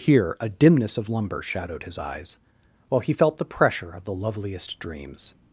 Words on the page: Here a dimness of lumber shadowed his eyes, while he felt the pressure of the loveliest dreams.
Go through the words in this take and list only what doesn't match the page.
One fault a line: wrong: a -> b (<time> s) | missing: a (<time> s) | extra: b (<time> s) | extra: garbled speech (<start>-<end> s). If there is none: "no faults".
no faults